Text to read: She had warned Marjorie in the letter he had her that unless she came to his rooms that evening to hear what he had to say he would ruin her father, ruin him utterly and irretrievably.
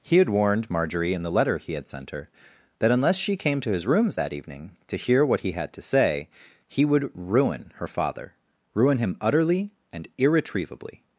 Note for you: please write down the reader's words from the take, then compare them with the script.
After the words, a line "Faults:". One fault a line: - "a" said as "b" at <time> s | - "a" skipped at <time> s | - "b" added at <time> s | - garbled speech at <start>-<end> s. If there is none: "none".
He had warned Marjorie in the letter he had sent her that unless she came to his rooms that evening to hear what he had to say he would ruin her father, ruin him utterly and irretrievably.
Faults:
- "She" said as "He" at 0.0 s
- "sent" added at 1.9 s